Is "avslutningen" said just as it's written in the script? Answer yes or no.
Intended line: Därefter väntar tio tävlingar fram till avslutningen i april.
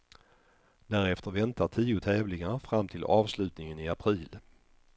yes